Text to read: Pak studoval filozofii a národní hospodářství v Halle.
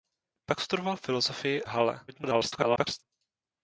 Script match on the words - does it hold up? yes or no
no